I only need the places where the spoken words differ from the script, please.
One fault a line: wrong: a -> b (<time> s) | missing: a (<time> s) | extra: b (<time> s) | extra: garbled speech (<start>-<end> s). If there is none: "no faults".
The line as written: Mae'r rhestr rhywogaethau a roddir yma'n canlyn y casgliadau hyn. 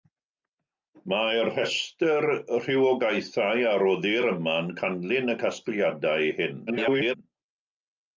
extra: garbled speech (6.7-7.1 s)